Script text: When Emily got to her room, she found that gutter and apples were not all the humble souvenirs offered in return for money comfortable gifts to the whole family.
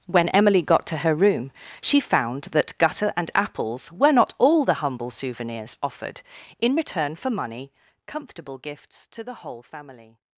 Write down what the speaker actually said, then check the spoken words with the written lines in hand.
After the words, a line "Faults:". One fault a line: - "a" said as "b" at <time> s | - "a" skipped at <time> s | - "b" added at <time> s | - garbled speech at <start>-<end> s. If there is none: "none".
When Emily got to her room, she found that gutter and apples were not all the humble souvenirs offered in return for money comfortable gifts to the whole family.
Faults:
none